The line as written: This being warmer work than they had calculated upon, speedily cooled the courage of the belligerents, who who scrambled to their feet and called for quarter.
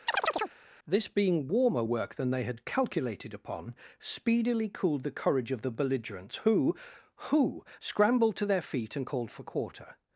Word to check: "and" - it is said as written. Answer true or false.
true